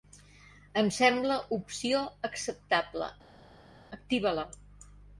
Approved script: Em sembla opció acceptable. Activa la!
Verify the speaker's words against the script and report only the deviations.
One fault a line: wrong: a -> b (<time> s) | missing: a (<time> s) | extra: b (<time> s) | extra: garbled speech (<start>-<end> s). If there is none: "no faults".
no faults